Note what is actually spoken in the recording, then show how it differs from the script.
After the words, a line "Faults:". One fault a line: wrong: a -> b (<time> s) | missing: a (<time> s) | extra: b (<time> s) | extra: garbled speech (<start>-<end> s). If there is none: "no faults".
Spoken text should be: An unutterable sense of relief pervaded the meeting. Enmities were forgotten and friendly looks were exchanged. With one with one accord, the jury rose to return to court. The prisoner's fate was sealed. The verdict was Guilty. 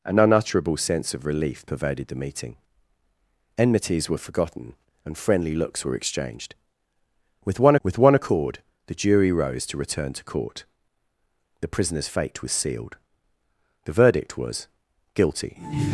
An unutterable sense of relief pervaded the meeting. Enmities were forgotten and friendly looks were exchanged. With one with one accord, the jury rose to return to court. The prisoner's fate was sealed. The verdict was Guilty.
Faults:
no faults